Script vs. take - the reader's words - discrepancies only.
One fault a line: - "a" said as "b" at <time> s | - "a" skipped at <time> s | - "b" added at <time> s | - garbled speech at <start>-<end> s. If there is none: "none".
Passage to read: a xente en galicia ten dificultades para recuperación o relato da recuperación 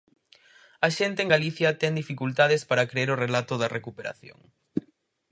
- "recuperación" said as "crer" at 2.9 s